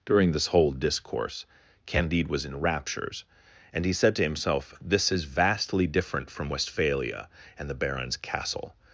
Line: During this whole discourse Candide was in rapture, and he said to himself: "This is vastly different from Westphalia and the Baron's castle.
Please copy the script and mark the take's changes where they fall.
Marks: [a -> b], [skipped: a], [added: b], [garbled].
During this whole discourse Candide was in [rapture, -> raptures] and he said to himself: "This is vastly different from Westphalia and the Baron's castle.